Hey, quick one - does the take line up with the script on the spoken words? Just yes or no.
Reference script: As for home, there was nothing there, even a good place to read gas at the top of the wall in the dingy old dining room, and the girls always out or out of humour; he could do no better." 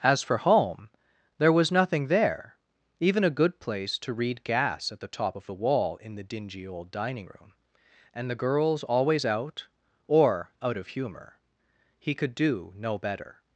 yes